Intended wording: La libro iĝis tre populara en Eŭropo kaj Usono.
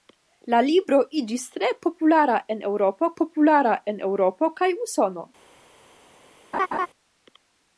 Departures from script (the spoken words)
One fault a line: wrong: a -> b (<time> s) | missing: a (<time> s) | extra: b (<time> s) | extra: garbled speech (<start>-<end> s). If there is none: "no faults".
extra: populara en Eŭropo (3.2 s)